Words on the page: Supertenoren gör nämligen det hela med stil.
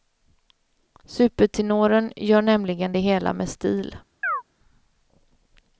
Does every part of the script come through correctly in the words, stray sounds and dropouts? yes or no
no